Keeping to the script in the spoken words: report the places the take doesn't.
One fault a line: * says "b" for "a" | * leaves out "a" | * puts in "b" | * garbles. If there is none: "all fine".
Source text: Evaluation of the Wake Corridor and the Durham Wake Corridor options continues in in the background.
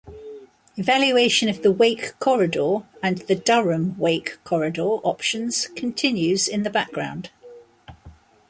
* leaves out "in"